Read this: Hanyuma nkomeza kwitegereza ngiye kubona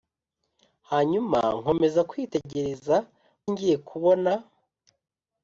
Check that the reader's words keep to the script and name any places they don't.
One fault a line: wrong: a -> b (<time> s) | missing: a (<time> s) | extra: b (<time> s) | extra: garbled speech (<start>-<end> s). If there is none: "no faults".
no faults